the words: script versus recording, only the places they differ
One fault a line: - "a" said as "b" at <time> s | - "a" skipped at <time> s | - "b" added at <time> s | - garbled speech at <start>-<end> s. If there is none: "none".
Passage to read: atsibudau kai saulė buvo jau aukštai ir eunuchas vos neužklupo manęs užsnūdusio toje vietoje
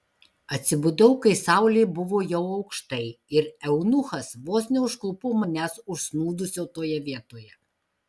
none